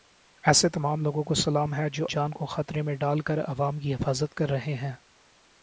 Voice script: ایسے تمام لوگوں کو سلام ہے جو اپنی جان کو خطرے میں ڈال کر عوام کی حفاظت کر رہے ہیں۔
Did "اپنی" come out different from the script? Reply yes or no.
yes